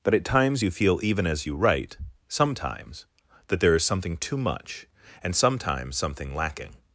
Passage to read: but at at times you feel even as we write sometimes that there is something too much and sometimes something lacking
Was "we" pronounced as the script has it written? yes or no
no